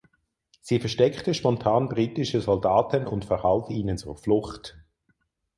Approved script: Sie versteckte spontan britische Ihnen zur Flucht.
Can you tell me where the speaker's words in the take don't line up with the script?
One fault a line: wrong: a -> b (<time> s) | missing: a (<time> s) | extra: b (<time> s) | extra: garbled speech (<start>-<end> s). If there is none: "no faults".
extra: Soldaten und verhalf (2.4 s)